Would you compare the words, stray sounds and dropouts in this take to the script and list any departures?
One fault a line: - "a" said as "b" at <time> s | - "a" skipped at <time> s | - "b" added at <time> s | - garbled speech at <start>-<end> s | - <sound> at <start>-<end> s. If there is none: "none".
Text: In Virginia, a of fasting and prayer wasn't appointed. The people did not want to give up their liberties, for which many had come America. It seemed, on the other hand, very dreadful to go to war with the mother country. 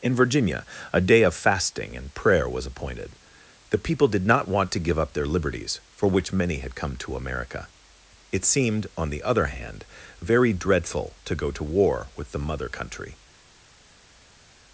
- "day" added at 1.0 s
- "wasn't" said as "was" at 2.5 s
- "to" added at 7.0 s